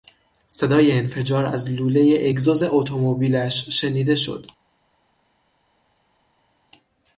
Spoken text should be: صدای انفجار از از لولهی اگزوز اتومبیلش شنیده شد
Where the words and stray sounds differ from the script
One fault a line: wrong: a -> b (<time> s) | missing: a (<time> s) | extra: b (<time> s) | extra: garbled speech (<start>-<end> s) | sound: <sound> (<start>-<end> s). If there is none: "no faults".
missing: از (1.7 s)